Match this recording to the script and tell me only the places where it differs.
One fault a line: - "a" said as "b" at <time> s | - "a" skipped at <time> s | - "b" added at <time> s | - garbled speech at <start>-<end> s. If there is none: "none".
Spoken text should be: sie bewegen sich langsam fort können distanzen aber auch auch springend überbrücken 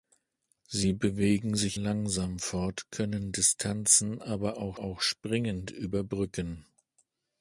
none